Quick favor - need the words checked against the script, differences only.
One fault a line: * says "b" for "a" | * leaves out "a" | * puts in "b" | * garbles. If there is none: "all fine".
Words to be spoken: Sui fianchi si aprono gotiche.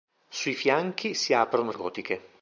all fine